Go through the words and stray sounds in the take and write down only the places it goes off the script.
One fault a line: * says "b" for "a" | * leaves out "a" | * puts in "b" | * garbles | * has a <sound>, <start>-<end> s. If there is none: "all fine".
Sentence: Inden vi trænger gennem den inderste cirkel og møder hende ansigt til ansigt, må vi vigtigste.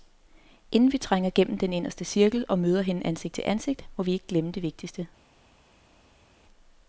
* puts in "ikke glemme det"